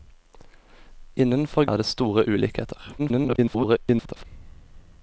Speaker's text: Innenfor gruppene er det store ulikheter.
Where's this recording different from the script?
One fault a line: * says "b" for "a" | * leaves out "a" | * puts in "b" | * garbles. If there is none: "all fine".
* leaves out "gruppene"
* garbles